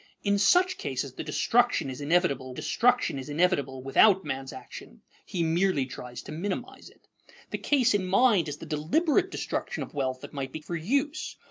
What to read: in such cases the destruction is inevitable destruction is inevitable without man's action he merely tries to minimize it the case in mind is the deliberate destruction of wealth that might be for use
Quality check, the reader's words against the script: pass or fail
pass